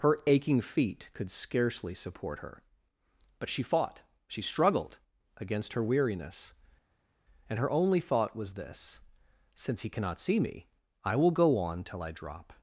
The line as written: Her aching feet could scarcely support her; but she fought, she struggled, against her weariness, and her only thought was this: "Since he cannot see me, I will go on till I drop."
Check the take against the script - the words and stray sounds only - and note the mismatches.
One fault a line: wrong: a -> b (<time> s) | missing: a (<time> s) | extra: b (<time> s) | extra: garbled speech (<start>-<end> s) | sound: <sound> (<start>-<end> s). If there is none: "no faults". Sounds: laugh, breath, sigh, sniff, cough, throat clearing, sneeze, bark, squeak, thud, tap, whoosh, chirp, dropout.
no faults